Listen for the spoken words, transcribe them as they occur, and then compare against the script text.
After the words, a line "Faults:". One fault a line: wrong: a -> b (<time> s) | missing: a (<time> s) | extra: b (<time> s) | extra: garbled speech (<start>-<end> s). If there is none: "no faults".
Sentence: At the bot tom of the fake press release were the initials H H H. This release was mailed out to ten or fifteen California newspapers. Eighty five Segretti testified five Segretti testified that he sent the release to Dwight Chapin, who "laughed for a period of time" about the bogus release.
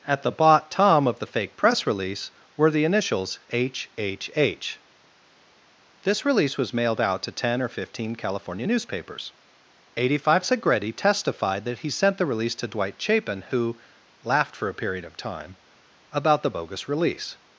At the bot tom of the fake press release were the initials H H H. This release was mailed out to ten or fifteen California newspapers. Eighty five Segretti testified that he sent the release to Dwight Chapin, who "laughed for a period of time" about the bogus release.
Faults:
missing: five Segretti testified (11.6 s)